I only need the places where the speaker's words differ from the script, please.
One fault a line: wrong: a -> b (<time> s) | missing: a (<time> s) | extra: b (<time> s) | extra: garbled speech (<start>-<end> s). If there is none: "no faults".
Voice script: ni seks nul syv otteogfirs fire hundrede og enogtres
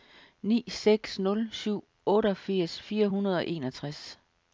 no faults